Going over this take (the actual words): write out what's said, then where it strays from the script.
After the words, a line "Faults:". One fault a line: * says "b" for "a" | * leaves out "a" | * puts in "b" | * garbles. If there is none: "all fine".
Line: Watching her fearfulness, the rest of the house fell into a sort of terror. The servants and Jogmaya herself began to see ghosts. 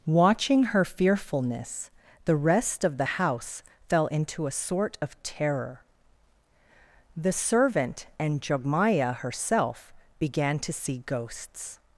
Watching her fearfulness, the rest of the house fell into a sort of terror. The servant and Jogmaya herself began to see ghosts.
Faults:
* says "servant" for "servants"